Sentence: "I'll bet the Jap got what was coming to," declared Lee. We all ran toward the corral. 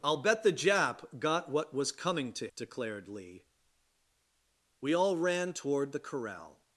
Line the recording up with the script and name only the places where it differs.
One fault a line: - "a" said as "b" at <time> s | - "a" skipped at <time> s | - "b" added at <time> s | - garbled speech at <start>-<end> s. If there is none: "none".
none